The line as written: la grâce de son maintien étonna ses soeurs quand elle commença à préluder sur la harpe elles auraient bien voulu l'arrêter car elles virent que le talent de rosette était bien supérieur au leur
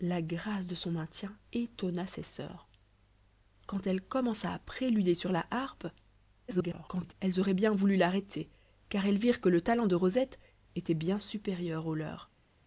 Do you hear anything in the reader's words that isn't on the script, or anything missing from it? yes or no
yes